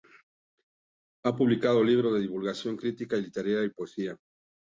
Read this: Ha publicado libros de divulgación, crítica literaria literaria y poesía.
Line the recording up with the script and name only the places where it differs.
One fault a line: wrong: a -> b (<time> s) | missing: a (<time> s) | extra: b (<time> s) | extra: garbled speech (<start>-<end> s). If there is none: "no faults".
missing: literaria (3.6 s)